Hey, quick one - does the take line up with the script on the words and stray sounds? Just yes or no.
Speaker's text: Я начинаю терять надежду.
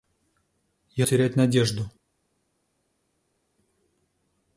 no